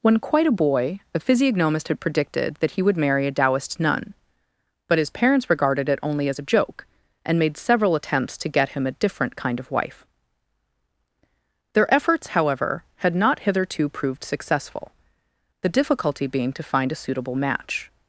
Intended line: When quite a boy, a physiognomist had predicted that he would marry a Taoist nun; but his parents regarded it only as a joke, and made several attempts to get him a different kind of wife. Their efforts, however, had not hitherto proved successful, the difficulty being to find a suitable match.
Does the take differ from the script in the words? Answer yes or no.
no